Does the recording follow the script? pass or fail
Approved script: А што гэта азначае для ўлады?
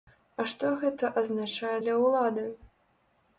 pass